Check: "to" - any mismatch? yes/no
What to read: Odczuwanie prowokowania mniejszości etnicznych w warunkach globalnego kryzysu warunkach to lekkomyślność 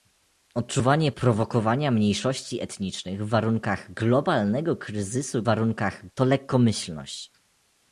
no